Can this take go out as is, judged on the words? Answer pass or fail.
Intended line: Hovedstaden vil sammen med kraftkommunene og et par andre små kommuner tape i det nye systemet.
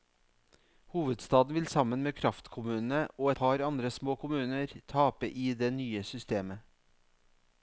fail